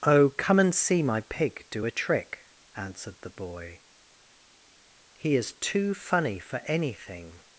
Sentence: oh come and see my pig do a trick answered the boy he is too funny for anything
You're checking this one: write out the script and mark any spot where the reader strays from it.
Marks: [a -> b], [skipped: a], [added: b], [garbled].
oh come and see my pig do a trick answered the boy he is too funny for anything